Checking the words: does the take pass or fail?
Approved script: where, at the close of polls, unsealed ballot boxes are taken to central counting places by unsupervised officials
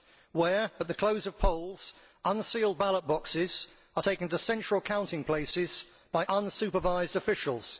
pass